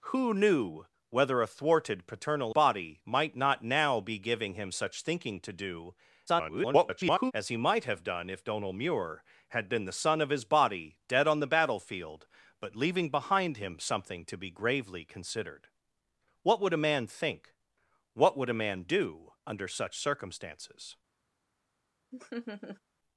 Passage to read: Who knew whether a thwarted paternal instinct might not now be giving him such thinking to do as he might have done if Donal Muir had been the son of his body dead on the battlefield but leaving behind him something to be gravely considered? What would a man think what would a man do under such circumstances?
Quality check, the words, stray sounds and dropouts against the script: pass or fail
fail